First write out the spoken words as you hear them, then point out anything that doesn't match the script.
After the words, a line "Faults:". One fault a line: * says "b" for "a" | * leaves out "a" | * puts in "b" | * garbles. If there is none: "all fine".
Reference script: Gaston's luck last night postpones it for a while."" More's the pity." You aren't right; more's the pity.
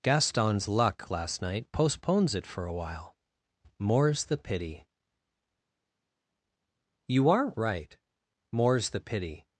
Gaston's luck last night postpones it for a while."" More's the pity." You aren't right; more's the pity.
Faults:
all fine